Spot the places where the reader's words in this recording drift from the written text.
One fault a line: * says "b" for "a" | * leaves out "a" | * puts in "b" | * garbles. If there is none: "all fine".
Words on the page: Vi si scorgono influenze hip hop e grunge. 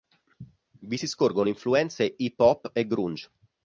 all fine